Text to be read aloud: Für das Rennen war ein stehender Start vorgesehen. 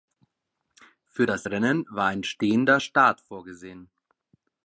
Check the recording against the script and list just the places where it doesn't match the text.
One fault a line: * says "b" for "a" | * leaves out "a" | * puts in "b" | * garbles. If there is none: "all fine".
all fine